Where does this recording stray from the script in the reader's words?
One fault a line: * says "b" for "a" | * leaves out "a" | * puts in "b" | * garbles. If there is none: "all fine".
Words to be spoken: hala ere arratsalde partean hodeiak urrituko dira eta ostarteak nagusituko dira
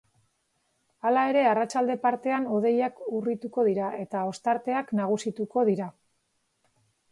all fine